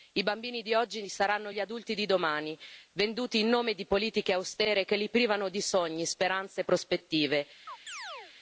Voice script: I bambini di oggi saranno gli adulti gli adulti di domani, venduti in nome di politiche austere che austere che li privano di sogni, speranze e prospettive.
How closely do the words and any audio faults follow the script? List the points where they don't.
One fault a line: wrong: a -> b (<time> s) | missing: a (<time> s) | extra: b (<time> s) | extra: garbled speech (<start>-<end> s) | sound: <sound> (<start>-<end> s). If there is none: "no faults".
missing: gli adulti (1.9 s)
missing: austere che (5.0 s)
sound: chirp (7.7-8.3 s)